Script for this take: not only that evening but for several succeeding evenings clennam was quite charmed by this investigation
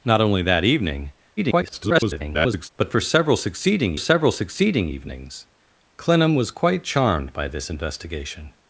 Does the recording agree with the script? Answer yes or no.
no